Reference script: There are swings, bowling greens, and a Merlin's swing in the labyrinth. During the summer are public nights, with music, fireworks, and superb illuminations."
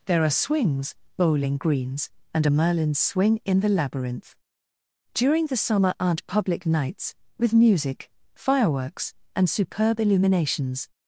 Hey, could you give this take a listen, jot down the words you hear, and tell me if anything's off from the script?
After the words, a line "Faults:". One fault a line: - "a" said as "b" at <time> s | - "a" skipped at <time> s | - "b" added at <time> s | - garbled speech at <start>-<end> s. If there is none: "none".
There are swings, bowling greens, and a Merlin's swing in the labyrinth. During the summer aren't public nights, with music, fireworks, and superb illuminations."
Faults:
- "are" said as "aren't" at 6.0 s